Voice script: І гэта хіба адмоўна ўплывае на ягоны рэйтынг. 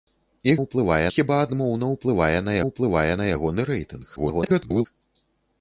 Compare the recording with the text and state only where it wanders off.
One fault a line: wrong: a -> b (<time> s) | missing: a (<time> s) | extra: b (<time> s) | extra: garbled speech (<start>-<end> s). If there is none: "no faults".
wrong: гэта -> ўплывае (0.6 s)
extra: ўплывае на (2.7 s)
extra: garbled speech (4.2-4.9 s)